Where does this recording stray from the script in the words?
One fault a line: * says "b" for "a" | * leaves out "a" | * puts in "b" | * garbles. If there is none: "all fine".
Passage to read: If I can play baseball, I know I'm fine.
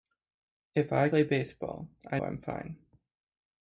* leaves out "can"
* leaves out "know"